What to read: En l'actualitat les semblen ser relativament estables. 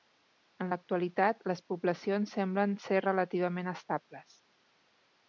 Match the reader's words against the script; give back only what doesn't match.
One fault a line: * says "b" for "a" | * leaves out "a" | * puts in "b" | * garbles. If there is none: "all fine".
* puts in "poblacions"